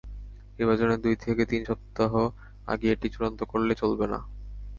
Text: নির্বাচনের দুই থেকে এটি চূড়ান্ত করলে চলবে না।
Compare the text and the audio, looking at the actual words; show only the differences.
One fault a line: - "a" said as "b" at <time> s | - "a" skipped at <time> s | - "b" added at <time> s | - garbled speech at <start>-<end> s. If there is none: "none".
- "তিন সপ্তাহ আগে" added at 1.4 s